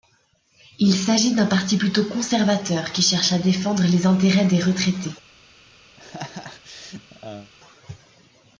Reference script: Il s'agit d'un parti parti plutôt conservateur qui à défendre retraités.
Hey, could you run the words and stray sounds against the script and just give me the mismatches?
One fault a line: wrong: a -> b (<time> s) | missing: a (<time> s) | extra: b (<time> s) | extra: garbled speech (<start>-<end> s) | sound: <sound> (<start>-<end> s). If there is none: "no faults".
missing: parti (1.8 s)
extra: cherche (3.0 s)
extra: les intérêts des (3.8 s)
sound: laugh (6.0-7.5 s)